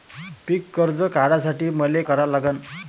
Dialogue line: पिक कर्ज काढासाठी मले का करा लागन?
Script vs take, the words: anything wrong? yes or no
yes